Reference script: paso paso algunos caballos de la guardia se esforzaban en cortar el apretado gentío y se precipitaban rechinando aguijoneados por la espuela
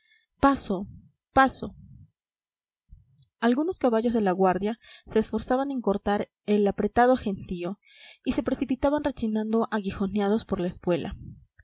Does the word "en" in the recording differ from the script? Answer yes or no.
no